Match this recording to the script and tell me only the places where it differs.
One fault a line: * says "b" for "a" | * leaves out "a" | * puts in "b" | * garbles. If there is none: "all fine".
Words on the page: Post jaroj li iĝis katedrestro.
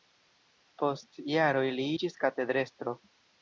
all fine